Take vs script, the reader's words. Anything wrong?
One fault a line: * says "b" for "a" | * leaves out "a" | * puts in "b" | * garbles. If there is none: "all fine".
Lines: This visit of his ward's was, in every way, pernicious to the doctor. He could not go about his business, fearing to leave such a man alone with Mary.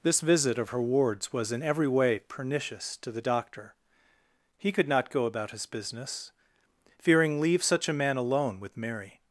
* says "her" for "his"
* leaves out "to"